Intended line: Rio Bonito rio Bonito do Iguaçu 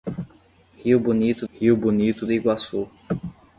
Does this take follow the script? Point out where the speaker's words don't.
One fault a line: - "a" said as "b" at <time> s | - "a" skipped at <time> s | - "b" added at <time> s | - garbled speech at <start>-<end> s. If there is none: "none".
none